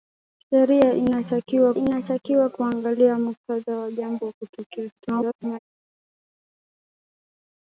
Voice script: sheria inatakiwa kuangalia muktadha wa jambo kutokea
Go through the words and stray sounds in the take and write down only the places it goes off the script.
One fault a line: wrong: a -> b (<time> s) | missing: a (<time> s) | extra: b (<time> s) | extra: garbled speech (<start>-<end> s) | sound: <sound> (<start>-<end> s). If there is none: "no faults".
extra: inatakiwa (1.7 s)
extra: garbled speech (5.0-5.6 s)